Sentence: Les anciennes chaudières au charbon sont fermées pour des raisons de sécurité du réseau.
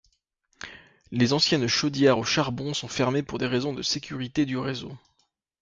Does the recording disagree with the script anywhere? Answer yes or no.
no